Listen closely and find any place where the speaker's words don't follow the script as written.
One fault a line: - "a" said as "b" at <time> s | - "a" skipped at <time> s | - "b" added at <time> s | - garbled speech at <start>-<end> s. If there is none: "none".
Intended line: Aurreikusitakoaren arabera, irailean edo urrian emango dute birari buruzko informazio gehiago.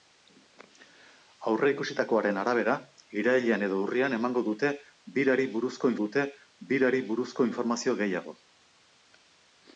- "dute birari buruzko" added at 6.0 s